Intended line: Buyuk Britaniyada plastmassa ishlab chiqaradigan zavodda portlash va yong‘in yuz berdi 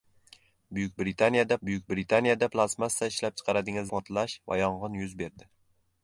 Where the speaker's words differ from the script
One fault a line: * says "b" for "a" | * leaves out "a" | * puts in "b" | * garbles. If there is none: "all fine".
* puts in "buyuk Britaniyada"
* leaves out "zavodda"